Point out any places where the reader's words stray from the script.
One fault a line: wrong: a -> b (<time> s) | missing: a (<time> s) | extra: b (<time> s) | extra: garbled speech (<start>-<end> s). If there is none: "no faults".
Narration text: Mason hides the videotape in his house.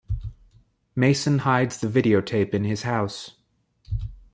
no faults